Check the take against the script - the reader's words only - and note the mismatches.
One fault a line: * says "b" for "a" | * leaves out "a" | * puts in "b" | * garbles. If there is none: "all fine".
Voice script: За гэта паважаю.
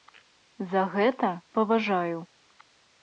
all fine